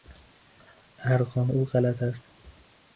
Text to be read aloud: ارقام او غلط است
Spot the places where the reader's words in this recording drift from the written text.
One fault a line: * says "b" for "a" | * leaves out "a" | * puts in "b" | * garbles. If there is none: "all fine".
all fine